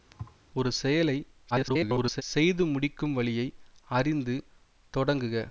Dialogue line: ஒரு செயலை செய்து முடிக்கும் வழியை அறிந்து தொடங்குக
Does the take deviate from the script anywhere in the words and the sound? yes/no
yes